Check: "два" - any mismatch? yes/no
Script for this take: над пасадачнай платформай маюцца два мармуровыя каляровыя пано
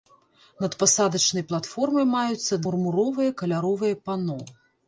yes